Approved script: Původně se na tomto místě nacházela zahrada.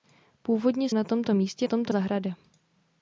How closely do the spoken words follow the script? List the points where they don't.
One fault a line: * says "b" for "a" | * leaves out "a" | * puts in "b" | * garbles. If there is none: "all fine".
* leaves out "se"
* says "tomto" for "nacházela"